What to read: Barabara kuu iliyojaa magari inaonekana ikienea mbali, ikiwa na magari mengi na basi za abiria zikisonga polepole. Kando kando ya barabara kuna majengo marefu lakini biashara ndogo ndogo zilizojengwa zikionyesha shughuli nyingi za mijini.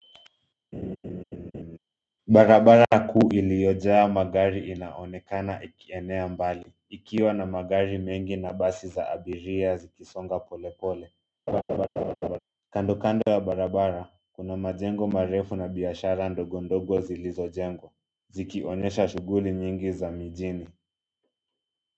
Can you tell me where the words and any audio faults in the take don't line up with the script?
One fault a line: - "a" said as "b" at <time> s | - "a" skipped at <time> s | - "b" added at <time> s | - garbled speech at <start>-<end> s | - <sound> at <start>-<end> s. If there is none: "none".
- laugh at 0.7-1.8 s
- laugh at 11.5-12.4 s
- "lakini" said as "na" at 15.6 s